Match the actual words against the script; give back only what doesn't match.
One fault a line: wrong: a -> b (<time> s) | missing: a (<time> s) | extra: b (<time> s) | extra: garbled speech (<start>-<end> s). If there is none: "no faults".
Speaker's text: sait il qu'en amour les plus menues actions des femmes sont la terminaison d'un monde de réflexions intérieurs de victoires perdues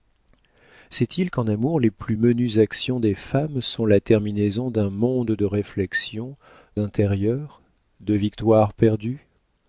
no faults